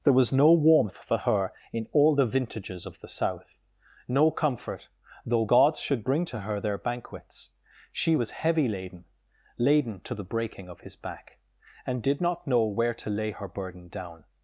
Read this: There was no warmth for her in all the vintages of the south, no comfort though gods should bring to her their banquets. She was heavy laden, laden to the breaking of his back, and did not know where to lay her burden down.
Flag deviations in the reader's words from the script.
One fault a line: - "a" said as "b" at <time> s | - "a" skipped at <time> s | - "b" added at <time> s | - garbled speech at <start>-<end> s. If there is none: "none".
none